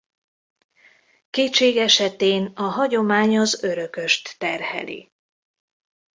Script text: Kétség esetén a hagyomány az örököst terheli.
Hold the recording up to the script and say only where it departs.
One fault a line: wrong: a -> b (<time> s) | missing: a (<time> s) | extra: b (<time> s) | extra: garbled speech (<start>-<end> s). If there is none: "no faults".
no faults